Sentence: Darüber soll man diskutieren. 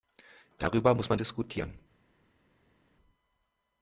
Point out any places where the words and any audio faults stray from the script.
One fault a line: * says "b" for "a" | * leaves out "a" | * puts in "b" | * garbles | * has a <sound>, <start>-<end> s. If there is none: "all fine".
* says "muss" for "soll"